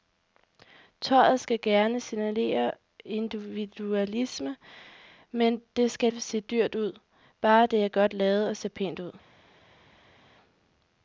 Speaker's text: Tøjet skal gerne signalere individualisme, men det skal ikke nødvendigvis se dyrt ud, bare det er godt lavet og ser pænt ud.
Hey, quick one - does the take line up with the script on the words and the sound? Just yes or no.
no